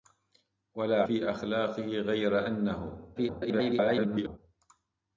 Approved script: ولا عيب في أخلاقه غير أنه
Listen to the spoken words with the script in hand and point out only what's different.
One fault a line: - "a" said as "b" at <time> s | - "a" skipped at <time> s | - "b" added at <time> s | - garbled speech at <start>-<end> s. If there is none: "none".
- "عيب" skipped at 1.0 s
- garbled speech at 3.2-4.4 s